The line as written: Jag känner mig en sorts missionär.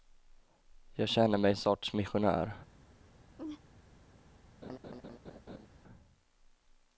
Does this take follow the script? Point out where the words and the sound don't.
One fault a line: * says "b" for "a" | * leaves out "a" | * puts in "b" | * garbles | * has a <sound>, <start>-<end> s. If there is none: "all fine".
* has a laugh, 3.4-3.6 s
* has a laugh, 4.6-5.7 s